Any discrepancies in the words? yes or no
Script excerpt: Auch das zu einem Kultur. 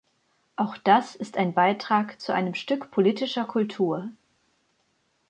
yes